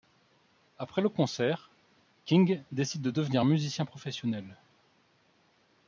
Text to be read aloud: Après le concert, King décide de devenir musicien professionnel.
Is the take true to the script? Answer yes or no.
yes